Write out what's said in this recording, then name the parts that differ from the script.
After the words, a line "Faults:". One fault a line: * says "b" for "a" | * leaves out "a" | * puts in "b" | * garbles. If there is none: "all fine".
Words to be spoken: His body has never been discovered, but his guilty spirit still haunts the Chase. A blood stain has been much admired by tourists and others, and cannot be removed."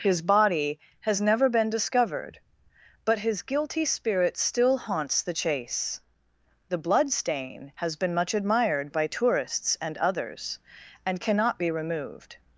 His body has never been discovered, but his guilty spirit still haunts the Chase. The blood stain has been much admired by tourists and others, and cannot be removed."
Faults:
* says "The" for "A"